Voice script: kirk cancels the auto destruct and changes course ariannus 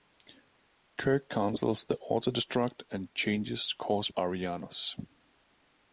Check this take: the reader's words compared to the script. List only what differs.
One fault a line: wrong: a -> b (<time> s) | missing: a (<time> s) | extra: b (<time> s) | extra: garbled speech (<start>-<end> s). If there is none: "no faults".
no faults